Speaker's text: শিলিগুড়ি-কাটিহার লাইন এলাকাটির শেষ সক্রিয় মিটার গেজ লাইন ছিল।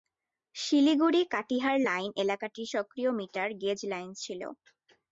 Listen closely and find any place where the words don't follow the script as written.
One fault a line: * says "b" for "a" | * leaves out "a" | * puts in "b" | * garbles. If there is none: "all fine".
* leaves out "শেষ"